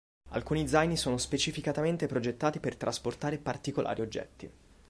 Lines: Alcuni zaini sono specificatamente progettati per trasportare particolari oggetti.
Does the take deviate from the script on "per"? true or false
false